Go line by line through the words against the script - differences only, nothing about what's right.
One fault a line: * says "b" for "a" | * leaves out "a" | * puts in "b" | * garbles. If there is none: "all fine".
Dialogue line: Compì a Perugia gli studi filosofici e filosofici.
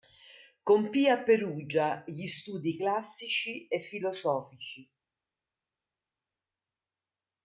* says "classici" for "filosofici"